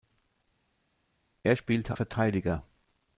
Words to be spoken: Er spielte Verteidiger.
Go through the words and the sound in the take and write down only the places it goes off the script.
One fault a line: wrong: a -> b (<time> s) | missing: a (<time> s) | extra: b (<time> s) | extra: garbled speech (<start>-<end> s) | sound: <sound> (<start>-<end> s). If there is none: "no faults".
no faults